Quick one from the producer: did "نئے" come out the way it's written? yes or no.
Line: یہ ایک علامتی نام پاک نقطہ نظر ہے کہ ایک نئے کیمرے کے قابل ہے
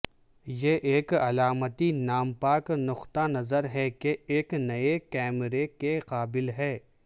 yes